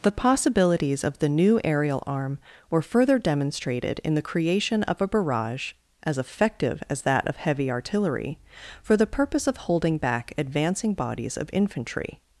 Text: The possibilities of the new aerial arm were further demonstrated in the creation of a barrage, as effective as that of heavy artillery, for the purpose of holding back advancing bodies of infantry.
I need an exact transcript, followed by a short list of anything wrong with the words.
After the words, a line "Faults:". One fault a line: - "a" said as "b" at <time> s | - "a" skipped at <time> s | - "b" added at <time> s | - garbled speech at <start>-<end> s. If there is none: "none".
The possibilities of the new aerial arm were further demonstrated in the creation of a barrage, as effective as that of heavy artillery, for the purpose of holding back advancing bodies of infantry.
Faults:
none